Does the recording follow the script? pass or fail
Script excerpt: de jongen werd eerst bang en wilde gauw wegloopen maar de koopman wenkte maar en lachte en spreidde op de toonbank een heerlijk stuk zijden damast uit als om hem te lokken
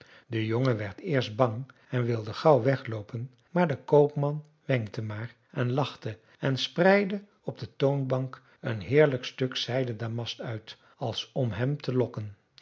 pass